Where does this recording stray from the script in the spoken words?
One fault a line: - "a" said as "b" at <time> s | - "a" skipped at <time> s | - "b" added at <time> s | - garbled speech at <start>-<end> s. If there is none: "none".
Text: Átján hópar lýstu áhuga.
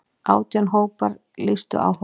none